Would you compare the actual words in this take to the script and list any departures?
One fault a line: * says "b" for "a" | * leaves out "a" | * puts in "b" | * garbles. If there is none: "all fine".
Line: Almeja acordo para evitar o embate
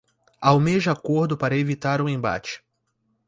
all fine